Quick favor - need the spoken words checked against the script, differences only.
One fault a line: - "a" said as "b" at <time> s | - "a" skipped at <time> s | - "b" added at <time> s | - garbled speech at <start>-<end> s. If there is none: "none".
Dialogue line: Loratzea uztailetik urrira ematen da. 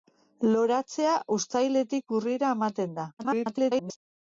- garbled speech at 3.2-4.0 s